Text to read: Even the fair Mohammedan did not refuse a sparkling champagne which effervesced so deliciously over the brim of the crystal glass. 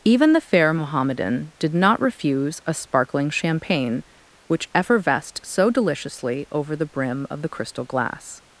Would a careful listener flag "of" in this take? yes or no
no